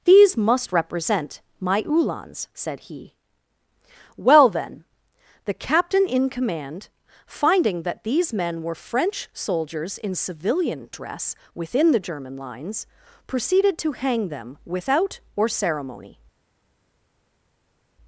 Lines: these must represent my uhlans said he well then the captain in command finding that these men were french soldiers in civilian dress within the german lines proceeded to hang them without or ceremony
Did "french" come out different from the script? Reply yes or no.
no